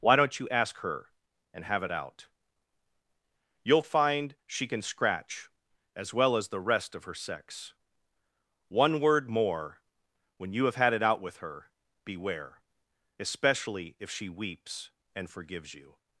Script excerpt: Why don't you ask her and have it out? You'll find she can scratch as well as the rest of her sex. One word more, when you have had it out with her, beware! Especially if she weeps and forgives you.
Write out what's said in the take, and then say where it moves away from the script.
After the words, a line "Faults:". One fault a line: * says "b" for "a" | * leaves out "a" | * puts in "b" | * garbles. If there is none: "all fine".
Why don't you ask her and have it out? You'll find she can scratch as well as the rest of her sex. One word more, when you have had it out with her, beware! Especially if she weeps and forgives you.
Faults:
all fine